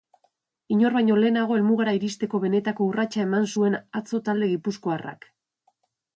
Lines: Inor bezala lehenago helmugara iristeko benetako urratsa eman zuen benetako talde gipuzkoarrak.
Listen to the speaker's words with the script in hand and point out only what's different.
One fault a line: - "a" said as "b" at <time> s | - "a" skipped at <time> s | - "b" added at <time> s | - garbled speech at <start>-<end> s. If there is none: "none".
- "bezala" said as "baino" at 0.9 s
- "benetako" said as "atzo" at 4.0 s